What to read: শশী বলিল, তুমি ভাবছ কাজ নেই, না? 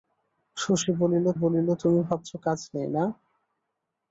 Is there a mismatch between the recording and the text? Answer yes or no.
yes